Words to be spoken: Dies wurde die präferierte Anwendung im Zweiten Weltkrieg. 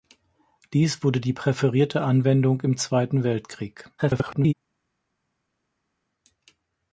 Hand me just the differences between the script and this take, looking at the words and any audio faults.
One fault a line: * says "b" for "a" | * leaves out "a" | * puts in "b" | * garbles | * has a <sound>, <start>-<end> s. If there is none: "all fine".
* garbles